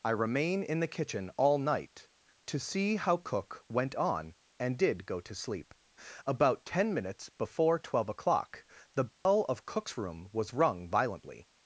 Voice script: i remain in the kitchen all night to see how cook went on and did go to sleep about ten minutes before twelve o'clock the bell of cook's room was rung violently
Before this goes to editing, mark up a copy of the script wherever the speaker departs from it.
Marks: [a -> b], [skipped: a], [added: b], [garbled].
i remain in the kitchen all night to see how cook went on and did go to sleep about ten minutes before twelve o'clock the bell of cook's room was rung violently